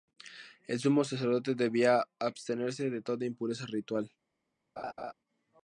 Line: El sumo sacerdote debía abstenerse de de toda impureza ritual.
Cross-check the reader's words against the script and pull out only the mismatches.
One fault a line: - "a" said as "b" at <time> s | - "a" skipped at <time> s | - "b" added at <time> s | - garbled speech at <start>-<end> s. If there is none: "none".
- "de" skipped at 3.0 s